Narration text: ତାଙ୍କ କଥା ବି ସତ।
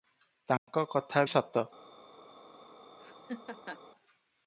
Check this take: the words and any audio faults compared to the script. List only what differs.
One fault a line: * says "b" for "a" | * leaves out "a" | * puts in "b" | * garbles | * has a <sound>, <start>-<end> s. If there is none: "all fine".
* has a dropout, 0.6-0.7 s
* leaves out "ବି"
* has a laugh, 3.0-3.8 s